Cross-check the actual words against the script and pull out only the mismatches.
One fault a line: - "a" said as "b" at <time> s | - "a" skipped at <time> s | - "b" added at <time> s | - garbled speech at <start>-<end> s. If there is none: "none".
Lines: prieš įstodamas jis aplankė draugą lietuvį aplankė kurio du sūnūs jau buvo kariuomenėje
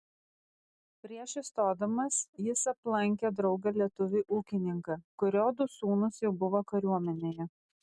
- "aplankė" said as "ūkininką" at 4.4 s